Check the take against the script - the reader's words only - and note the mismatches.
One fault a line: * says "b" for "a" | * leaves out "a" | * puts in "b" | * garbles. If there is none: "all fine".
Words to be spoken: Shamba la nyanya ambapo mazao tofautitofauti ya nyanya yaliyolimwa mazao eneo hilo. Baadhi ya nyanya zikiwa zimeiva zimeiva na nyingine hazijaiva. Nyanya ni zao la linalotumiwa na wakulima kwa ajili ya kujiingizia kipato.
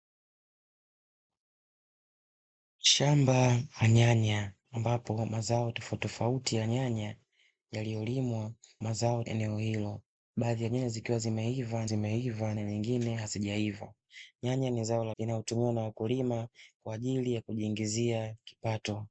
all fine